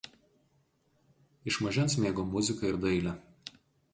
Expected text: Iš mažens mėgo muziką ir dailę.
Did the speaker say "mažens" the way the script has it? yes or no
yes